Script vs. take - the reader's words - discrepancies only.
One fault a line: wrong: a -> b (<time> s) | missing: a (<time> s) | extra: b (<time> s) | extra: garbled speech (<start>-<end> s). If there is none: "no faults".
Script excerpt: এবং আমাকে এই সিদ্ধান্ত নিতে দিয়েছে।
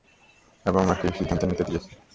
no faults